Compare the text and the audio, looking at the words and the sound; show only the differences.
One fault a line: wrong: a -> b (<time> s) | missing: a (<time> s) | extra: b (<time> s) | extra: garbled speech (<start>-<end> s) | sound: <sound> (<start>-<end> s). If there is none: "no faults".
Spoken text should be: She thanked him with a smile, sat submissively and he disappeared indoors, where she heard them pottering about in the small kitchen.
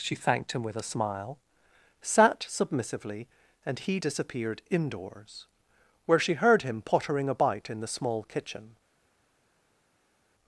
wrong: them -> him (6.6 s)